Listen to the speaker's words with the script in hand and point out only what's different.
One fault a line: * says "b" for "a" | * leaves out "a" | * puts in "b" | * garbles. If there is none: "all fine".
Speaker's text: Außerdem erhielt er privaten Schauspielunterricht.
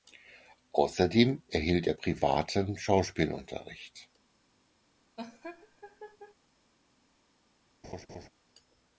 all fine